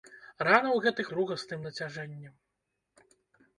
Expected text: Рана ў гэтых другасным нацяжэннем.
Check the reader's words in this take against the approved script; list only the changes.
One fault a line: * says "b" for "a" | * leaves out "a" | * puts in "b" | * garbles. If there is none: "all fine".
all fine